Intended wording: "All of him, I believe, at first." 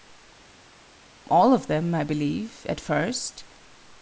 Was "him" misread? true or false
true